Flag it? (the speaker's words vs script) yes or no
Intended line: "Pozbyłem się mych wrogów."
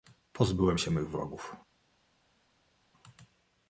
no